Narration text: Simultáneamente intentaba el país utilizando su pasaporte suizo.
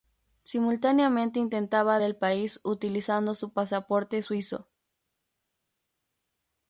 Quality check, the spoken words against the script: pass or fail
pass